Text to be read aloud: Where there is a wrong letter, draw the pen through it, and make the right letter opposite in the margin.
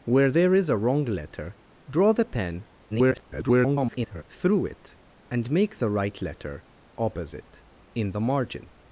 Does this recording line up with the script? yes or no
no